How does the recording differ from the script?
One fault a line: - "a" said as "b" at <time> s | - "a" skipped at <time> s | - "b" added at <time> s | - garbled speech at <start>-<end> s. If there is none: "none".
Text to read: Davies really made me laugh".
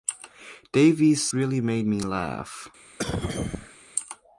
none